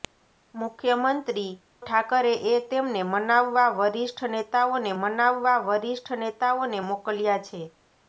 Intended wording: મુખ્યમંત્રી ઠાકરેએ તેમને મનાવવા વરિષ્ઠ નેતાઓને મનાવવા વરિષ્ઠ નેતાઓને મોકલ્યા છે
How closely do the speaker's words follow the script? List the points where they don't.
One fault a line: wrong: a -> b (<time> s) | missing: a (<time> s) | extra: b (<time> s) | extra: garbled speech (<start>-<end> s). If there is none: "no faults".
no faults